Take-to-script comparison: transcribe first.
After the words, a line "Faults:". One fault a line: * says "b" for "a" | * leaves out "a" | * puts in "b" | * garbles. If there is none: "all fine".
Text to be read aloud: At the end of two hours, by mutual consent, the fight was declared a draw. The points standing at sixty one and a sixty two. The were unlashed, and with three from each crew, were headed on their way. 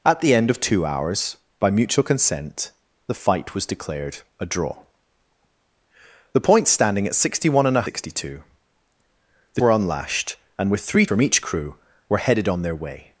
At the end of two hours, by mutual consent, the fight was declared a draw. The points standing at sixty one and a sixty two. The were unlashed, and with three from each crew, were headed on their way.
Faults:
all fine